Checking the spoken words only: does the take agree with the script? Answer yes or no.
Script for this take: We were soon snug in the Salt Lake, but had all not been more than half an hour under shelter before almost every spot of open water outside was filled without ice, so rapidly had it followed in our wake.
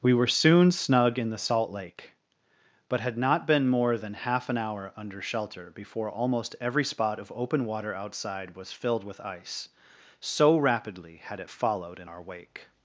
no